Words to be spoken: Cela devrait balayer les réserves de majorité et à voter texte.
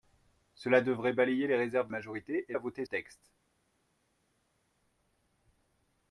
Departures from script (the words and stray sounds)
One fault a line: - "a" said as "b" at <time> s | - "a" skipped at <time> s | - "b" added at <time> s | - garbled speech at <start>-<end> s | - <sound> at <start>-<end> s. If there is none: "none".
none